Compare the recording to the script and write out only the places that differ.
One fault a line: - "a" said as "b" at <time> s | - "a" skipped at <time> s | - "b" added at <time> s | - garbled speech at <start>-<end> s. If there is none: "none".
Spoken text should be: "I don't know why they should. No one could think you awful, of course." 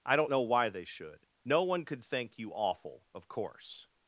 none